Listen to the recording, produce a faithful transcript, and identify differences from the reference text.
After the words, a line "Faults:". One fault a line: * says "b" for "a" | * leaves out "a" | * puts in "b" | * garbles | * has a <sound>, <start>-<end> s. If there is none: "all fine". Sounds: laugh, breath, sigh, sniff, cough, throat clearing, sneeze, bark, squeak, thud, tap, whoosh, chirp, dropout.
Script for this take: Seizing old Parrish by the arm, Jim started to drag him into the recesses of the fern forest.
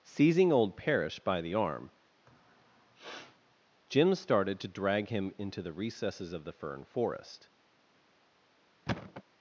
Seizing old Parrish by the arm, Jim started to drag him into the recesses of the fern forest.
Faults:
* has a sniff, 2.3-3.6 s
* has a thud, 8.9-9.2 s